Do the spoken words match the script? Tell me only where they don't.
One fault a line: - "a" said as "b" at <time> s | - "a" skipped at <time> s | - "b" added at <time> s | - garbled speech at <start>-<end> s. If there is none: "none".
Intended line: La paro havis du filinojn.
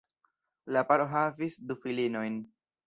none